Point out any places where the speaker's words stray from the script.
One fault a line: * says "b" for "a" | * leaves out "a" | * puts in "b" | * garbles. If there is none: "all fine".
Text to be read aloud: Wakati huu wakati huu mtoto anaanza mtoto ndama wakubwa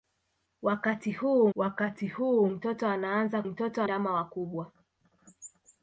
all fine